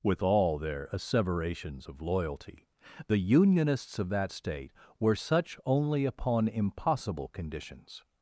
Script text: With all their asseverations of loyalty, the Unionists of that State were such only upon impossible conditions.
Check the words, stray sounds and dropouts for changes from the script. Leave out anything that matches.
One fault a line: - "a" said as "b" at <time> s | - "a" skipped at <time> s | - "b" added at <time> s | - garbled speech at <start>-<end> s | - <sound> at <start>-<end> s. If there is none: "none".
none